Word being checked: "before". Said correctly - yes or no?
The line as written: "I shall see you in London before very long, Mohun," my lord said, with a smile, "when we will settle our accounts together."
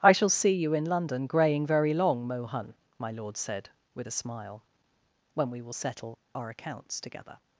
no